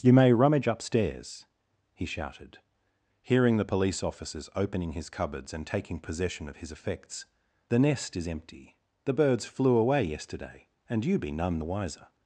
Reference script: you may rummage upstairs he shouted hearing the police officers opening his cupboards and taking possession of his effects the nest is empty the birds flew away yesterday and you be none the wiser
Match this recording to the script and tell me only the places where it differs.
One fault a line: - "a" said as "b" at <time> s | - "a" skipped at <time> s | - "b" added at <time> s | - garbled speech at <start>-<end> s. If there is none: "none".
none